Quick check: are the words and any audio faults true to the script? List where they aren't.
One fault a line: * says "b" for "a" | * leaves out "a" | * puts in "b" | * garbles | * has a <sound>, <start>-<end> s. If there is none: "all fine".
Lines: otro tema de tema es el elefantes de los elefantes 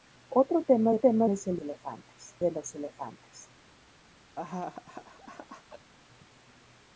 * has a laugh, 4.4-5.9 s